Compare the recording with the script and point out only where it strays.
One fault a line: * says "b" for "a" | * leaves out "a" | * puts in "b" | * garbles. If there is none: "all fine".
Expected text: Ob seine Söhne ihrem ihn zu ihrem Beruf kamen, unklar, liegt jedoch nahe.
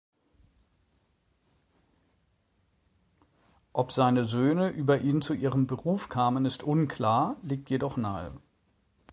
* says "über" for "ihrem"
* puts in "ist"